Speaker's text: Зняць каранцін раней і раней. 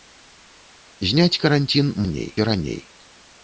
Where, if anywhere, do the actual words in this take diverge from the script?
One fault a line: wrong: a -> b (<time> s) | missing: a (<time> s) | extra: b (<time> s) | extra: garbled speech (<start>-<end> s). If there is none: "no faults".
no faults